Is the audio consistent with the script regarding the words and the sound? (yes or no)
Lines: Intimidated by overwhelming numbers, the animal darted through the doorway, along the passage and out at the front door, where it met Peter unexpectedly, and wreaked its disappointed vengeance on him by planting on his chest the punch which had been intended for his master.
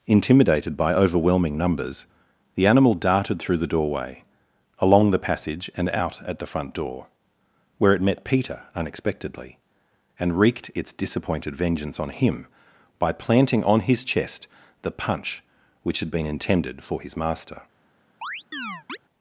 no